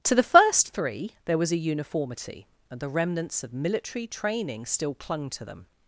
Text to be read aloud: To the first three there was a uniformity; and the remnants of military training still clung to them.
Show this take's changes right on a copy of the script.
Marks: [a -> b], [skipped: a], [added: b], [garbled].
To the first three there was a uniformity; and the remnants of military training still clung to them.